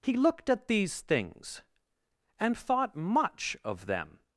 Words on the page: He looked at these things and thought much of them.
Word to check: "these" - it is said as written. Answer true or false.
true